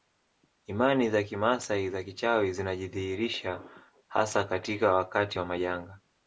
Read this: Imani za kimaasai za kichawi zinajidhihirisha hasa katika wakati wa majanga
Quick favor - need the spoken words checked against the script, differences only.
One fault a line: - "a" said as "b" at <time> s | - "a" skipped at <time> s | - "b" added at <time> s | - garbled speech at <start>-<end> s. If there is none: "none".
none